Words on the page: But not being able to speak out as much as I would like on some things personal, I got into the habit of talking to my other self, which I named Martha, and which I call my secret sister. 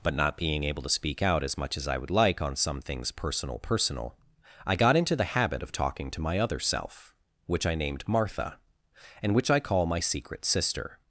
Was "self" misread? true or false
false